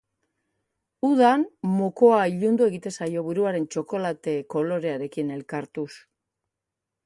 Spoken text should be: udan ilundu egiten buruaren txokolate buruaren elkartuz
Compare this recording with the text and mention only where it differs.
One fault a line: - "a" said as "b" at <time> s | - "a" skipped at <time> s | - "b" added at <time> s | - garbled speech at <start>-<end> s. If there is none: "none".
- "mokoa" added at 1.7 s
- "zaio" added at 3.0 s
- "buruaren" said as "kolorearekin" at 4.6 s